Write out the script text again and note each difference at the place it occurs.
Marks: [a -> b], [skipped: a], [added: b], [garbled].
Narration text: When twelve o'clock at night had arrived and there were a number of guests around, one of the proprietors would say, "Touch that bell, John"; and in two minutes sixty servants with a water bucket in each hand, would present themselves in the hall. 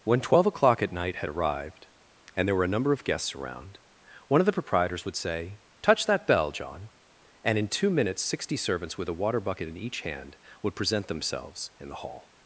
When twelve o'clock at night had arrived and there were a number of guests around, one of the proprietors would say, "Touch that bell, John"; and in two minutes sixty servants with a water bucket in each hand, would present themselves in the hall.